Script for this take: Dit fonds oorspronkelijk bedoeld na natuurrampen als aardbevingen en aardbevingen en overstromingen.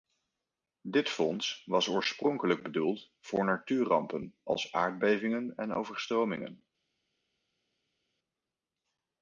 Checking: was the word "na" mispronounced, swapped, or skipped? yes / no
yes